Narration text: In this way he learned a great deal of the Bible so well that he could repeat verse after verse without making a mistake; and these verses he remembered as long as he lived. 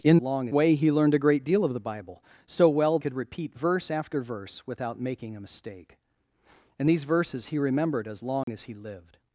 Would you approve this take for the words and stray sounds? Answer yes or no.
no